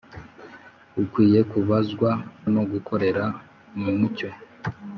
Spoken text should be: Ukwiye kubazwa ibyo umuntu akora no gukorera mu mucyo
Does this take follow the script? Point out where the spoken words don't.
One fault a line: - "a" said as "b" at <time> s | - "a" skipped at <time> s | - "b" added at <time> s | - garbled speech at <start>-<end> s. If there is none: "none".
- "ibyo umuntu akora" skipped at 2.1 s